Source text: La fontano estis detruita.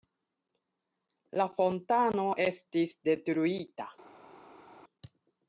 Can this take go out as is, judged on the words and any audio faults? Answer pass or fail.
pass